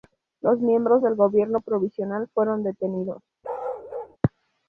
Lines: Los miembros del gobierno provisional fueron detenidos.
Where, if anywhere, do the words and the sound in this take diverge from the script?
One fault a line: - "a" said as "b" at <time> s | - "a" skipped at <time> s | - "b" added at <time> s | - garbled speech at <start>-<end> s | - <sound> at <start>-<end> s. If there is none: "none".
- bark at 3.4-4.2 s